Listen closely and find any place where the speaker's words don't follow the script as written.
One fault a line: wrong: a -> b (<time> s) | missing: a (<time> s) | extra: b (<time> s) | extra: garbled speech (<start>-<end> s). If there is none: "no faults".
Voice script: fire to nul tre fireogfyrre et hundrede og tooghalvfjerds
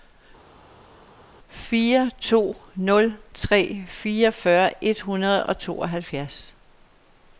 no faults